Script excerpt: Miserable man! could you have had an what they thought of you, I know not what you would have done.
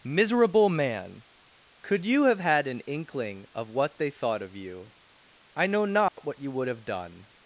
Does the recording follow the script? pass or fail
fail